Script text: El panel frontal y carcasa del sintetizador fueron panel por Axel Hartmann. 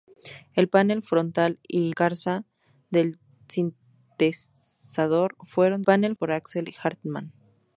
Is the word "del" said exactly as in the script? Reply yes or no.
yes